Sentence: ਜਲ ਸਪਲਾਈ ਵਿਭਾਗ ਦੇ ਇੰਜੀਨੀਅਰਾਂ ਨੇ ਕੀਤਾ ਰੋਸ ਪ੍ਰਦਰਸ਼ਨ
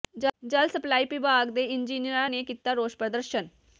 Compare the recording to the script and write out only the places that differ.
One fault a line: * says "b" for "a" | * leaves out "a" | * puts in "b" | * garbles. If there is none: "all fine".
all fine